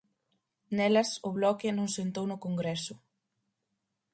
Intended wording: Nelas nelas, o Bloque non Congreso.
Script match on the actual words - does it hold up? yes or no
no